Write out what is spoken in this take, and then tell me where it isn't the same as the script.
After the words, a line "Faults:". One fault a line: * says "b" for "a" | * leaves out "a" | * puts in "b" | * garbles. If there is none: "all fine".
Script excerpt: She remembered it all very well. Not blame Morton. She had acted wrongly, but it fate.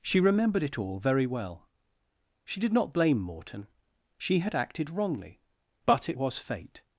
She remembered it all very well. She did not blame Morton. She had acted wrongly, but it was fate.
Faults:
* puts in "She did"
* puts in "was"